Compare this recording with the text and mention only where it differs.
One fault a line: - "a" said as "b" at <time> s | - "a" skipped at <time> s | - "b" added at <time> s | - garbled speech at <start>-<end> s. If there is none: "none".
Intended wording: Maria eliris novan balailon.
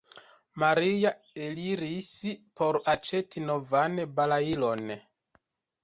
- "por aĉeti" added at 2.6 s